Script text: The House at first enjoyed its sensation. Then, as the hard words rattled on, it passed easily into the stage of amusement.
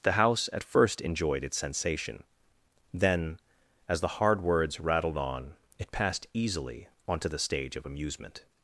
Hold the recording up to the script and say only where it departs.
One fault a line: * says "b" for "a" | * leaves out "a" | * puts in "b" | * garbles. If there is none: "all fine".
* says "onto" for "into"